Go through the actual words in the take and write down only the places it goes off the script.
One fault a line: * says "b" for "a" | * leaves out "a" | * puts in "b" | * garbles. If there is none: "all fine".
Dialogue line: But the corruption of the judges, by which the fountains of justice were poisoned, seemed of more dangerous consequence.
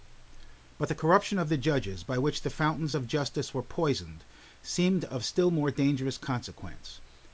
* puts in "still"